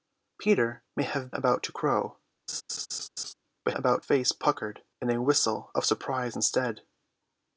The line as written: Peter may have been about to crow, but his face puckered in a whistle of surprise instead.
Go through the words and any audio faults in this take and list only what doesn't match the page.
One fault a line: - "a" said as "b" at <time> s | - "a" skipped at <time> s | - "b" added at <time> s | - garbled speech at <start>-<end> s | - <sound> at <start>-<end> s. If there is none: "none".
- "been" skipped at 1.3 s
- laugh at 2.5-3.3 s
- "his" said as "about" at 3.7 s